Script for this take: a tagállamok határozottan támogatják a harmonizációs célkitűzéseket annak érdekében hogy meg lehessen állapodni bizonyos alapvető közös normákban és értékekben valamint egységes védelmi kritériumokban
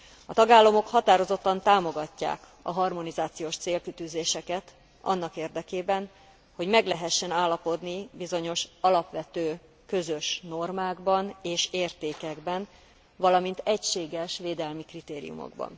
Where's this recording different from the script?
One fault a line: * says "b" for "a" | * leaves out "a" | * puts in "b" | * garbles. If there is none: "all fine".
all fine